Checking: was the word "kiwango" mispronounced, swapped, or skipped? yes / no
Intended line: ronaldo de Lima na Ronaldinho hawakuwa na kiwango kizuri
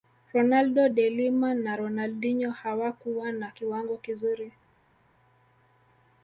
no